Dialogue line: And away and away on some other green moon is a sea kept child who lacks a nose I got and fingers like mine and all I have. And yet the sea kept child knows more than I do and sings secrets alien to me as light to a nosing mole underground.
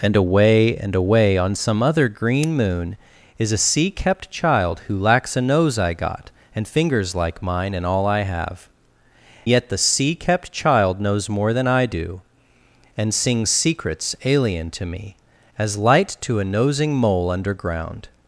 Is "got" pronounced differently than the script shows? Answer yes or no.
no